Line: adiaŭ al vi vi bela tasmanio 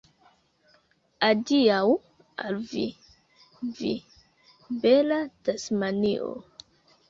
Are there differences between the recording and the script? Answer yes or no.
no